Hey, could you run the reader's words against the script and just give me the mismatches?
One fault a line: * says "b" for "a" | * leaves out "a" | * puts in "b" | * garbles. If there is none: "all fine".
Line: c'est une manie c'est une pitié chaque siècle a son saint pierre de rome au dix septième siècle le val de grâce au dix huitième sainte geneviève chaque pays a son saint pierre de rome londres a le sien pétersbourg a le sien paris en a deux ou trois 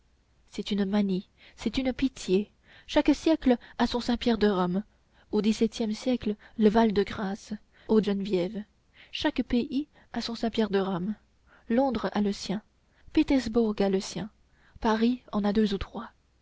* leaves out "dix huitième sainte"